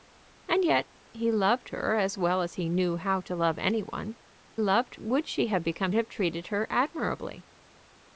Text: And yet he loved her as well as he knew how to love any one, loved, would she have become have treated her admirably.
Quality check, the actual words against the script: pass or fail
pass